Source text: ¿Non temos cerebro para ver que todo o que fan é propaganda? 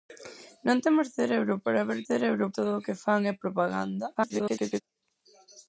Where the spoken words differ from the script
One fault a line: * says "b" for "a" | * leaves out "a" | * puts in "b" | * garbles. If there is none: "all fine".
* says "cerebro" for "que"
* garbles